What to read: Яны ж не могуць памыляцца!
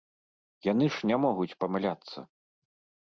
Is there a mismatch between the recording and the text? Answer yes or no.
no